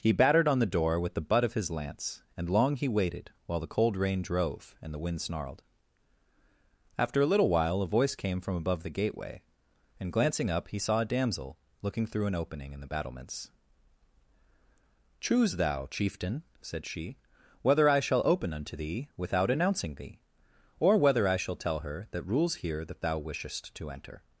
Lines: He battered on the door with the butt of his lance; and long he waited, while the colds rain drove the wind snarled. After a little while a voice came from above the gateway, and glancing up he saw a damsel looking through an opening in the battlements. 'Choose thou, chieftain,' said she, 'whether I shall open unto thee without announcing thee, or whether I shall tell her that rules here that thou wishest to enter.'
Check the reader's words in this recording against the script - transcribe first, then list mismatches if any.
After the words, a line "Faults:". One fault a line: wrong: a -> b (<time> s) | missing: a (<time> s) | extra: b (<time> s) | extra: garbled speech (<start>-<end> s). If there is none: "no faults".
He battered on the door with the butt of his lance; and long he waited, while the cold rain drove and the wind snarled. After a little while a voice came from above the gateway, and glancing up he saw a damsel looking through an opening in the battlements. 'Choose thou, chieftain,' said she, 'whether I shall open unto thee without announcing thee, or whether I shall tell her that rules here that thou wishest to enter.'
Faults:
wrong: colds -> cold (3.8 s)
extra: and (4.8 s)